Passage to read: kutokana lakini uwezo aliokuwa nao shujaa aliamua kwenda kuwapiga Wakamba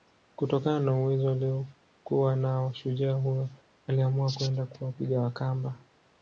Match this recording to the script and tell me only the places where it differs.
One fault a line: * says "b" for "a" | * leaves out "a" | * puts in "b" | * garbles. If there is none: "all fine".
* says "na" for "lakini"
* puts in "huyo"